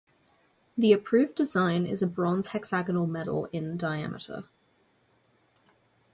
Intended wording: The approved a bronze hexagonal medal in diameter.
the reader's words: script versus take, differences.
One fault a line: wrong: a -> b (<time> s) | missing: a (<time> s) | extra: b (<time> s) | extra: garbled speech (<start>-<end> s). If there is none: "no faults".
extra: design is (1.4 s)